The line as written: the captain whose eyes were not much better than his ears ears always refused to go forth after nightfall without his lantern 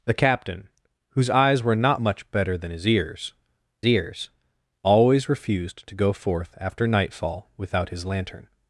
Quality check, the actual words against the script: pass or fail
pass